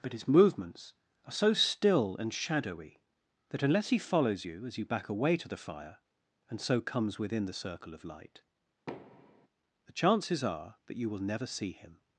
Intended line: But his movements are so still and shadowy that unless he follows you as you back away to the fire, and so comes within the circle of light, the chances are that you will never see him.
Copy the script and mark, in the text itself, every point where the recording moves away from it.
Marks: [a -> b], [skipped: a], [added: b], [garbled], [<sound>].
But his movements are so still and shadowy that unless he follows you as you back away to the fire, and so comes within the circle of light, [thud] the chances are that you will never see him.